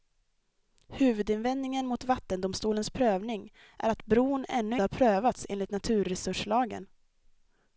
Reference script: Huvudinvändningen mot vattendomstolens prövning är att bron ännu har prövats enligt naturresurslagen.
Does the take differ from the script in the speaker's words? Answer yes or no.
no